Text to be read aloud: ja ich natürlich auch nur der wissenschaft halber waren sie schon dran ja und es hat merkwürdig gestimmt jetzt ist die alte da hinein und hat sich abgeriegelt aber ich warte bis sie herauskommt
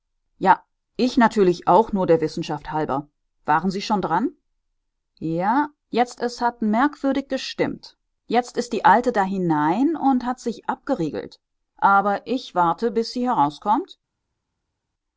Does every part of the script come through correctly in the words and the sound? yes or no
no